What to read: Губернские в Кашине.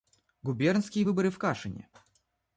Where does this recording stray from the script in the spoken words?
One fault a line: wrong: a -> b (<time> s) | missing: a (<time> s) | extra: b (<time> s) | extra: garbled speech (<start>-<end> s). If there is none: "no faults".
extra: выборы (1.0 s)